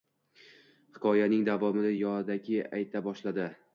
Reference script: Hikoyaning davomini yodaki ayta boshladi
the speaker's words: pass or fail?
pass